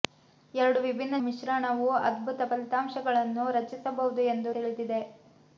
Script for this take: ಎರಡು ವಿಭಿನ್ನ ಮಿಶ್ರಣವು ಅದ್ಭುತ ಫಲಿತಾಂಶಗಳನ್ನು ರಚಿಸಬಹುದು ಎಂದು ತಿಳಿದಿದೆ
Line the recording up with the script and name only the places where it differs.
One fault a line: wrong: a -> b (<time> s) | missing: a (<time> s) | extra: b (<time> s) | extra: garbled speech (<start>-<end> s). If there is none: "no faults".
no faults